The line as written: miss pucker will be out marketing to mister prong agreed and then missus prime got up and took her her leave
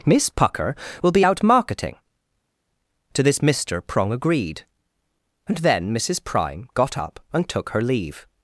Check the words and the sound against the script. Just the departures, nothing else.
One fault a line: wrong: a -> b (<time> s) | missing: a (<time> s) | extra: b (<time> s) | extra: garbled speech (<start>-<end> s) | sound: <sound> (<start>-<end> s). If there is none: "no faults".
extra: this (3.2 s)
missing: her (7.8 s)